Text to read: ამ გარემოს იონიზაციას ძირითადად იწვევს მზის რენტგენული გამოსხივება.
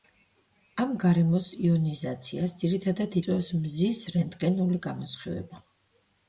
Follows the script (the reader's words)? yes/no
yes